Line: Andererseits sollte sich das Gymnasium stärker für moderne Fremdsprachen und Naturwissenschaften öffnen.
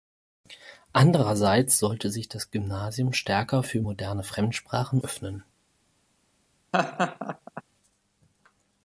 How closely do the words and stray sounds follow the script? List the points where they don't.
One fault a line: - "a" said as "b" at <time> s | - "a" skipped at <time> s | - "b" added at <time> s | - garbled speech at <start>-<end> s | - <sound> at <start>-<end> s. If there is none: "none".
- "und Naturwissenschaften" skipped at 5.0 s
- laugh at 6.7-7.6 s